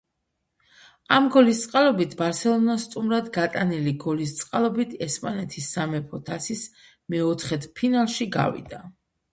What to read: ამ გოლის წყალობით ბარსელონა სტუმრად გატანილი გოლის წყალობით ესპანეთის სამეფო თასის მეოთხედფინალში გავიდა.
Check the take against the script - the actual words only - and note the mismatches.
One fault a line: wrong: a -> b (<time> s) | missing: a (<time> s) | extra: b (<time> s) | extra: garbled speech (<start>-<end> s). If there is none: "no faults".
no faults